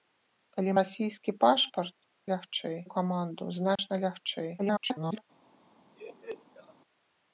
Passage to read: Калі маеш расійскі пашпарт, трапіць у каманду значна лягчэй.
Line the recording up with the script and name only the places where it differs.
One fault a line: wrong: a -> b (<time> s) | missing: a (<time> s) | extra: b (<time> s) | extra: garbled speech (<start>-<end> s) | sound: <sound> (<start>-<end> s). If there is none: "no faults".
missing: маеш (0.7 s)
wrong: трапіць -> лягчэй (2.3 s)
sound: dropout (3.8-3.8 s)
extra: garbled speech (4.6-5.2 s)
sound: laugh (5.9-6.7 s)